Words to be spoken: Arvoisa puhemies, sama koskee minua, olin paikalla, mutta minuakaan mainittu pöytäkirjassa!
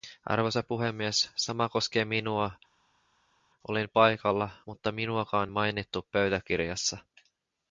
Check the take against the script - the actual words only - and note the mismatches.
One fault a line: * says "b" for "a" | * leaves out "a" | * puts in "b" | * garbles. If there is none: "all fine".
all fine